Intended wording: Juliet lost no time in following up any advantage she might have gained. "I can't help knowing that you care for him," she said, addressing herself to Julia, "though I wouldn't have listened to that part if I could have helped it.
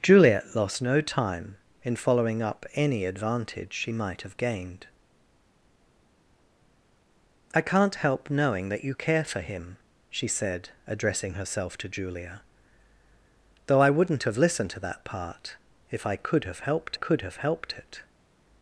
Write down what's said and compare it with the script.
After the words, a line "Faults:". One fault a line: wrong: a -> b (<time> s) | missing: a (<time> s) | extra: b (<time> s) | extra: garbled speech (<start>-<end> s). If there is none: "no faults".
Juliet lost no time in following up any advantage she might have gained. "I can't help knowing that you care for him," she said, addressing herself to Julia, "though I wouldn't have listened to that part if I could have helped could have helped it.
Faults:
extra: could have helped (16.9 s)